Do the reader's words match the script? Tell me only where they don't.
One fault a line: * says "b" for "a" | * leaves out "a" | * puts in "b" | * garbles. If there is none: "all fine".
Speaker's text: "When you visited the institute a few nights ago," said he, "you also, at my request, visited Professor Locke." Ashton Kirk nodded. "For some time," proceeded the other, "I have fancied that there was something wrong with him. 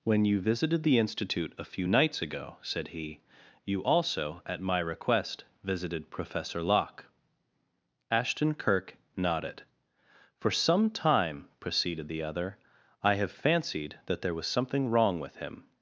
all fine